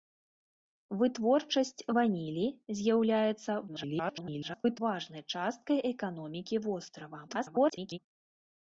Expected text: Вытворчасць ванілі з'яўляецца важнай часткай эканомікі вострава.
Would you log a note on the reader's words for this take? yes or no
yes